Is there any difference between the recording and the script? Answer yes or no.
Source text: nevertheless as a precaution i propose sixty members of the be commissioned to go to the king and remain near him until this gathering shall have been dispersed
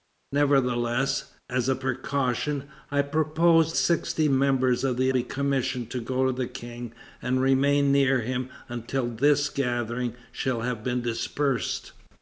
no